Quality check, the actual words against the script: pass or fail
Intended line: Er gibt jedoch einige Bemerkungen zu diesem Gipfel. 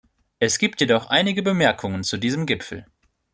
fail